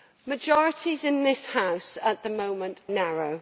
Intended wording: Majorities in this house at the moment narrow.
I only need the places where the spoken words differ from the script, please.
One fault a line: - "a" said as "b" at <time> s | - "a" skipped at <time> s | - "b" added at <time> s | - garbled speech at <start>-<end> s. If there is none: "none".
none